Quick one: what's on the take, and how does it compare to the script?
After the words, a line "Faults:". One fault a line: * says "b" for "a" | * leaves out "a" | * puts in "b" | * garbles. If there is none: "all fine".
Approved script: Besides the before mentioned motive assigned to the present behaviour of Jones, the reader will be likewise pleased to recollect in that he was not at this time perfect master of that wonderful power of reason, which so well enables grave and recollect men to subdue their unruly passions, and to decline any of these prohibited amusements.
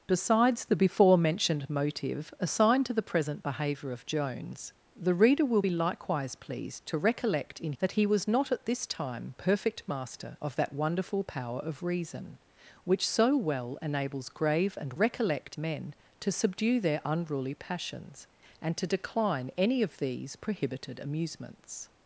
Besides the before mentioned motive assigned to the present behaviour of Jones, the reader will be likewise pleased to recollect in that he was not at this time perfect master of that wonderful power of reason, which so well enables grave and recollect men to subdue their unruly passions, and to decline any of these prohibited amusements.
Faults:
all fine